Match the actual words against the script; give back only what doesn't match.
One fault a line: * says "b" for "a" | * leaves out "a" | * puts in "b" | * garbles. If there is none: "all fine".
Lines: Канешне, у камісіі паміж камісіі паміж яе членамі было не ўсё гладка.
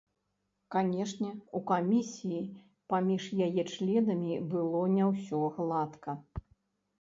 * leaves out "камісіі паміж"